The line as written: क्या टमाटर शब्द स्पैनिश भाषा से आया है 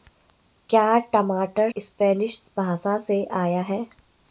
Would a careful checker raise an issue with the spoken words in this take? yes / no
yes